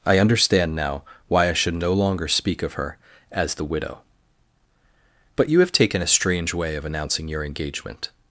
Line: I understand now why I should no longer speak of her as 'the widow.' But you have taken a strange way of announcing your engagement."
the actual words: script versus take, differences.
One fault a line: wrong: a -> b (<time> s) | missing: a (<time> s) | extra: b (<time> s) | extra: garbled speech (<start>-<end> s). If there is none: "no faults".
no faults